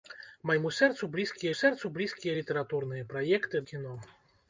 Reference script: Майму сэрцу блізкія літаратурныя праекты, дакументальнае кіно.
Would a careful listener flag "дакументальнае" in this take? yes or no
yes